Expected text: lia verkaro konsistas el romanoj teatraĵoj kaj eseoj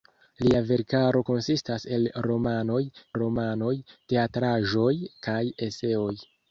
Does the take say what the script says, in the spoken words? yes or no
no